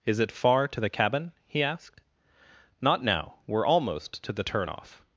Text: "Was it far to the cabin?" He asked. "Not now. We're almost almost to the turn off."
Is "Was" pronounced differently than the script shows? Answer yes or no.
yes